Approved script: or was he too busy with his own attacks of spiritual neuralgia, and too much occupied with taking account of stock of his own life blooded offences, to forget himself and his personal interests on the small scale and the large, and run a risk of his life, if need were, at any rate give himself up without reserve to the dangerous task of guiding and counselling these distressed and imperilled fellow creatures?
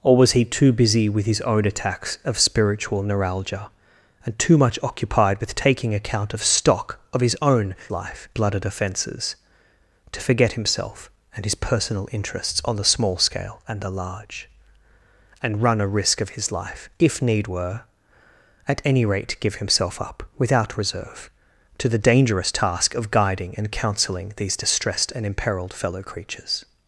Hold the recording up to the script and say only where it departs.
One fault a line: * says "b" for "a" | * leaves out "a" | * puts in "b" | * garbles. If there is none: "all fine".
all fine